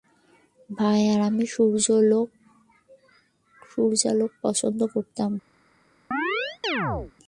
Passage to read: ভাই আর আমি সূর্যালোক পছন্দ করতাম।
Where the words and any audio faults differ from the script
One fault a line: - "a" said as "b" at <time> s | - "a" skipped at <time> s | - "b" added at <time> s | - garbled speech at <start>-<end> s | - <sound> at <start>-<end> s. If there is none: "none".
- chirp at 6.1-7.1 s